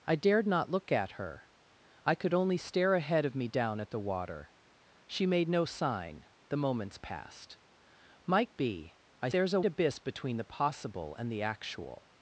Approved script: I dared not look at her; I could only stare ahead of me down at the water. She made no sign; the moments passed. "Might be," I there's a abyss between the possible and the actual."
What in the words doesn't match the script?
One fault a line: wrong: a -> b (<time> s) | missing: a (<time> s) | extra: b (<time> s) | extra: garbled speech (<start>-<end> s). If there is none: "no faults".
no faults